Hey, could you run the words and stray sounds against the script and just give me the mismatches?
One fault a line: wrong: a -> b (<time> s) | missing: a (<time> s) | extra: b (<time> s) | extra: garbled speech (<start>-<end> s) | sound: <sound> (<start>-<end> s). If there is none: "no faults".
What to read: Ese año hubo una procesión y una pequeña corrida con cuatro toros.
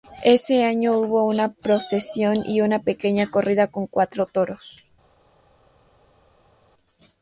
no faults